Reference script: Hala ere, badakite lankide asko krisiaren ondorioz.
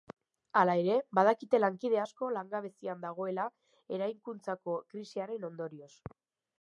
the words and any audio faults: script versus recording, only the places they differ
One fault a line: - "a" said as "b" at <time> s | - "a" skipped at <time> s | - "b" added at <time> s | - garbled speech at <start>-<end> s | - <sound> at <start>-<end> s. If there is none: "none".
- "langabezian dagoela eraikuntzako" added at 2.4 s